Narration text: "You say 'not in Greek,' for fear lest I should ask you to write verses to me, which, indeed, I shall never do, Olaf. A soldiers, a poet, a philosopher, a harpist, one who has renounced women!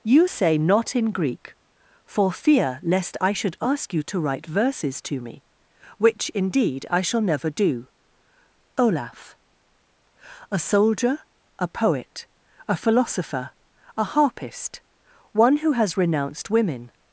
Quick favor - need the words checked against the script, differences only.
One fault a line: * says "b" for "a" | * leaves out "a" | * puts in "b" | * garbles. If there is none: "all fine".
* says "soldier" for "soldiers"